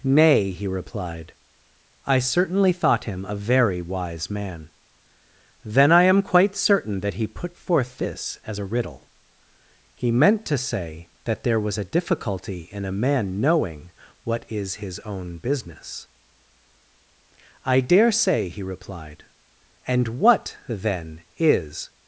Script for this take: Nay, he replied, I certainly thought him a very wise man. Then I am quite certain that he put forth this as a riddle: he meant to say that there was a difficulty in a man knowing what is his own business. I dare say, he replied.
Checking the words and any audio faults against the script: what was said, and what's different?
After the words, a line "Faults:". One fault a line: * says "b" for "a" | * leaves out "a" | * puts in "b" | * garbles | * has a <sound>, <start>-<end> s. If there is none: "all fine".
Nay, he replied, I certainly thought him a very wise man. Then I am quite certain that he put forth this as a riddle: he meant to say that there was a difficulty in a man knowing what is his own business. I dare say, he replied. And what, then, is
Faults:
* puts in "And what then is"